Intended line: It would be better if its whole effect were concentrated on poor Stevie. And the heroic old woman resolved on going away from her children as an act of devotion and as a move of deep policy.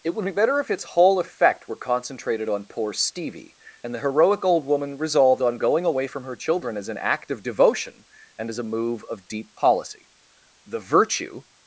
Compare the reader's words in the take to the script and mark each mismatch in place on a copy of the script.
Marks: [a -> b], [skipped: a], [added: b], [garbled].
It would be better if its whole effect were concentrated on poor Stevie. And the heroic old woman resolved on going away from her children as an act of devotion and as a move of deep policy. [added: The virtue]